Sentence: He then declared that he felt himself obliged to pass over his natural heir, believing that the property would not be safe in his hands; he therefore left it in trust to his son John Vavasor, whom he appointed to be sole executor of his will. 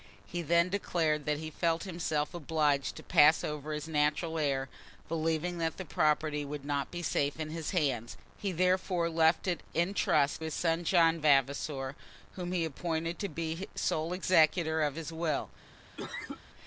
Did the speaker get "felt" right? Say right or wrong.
right